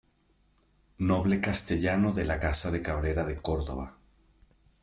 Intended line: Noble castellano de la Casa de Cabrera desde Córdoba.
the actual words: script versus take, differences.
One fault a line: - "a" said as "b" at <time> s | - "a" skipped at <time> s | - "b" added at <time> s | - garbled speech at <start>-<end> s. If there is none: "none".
- "desde" said as "de" at 3.3 s